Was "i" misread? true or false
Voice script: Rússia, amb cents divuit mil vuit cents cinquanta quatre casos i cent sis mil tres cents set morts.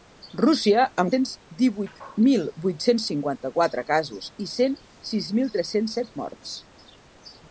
false